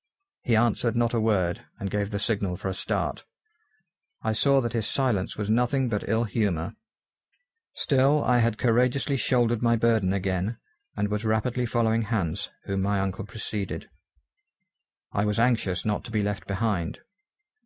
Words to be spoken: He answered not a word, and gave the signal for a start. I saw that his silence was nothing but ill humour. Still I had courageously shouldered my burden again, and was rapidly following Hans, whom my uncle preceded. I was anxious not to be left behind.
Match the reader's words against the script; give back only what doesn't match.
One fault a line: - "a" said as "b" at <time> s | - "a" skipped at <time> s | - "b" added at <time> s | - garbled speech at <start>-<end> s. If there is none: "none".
none